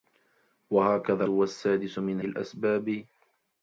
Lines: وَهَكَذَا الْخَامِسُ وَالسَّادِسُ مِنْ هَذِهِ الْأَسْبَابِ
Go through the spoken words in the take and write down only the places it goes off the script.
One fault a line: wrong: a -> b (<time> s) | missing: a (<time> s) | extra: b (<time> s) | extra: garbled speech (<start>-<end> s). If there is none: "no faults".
missing: الْخَامِسُ (1.2 s)
missing: هَذِهِ (2.2 s)